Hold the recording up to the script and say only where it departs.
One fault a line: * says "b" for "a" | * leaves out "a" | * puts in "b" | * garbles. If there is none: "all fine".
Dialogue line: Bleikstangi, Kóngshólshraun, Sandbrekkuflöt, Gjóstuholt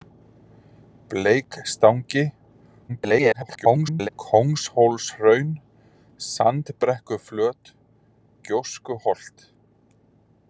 * garbles